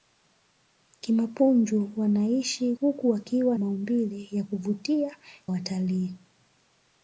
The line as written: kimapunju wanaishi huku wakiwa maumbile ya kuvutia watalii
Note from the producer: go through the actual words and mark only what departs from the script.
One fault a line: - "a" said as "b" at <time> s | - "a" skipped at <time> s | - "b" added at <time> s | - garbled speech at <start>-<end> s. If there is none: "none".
none